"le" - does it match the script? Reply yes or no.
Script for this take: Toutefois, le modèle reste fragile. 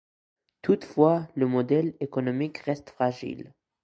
yes